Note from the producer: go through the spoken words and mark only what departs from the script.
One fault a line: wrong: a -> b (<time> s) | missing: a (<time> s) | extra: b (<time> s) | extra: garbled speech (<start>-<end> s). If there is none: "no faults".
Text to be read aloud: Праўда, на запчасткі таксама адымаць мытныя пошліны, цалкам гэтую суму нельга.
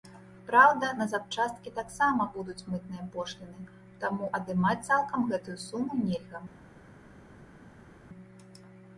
wrong: адымаць -> будуць (2.4 s)
extra: таму адымаць (4.0 s)